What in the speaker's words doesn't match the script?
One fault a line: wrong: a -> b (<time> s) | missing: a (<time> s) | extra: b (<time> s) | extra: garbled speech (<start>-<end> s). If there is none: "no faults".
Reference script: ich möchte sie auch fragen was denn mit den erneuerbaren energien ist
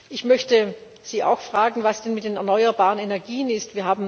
no faults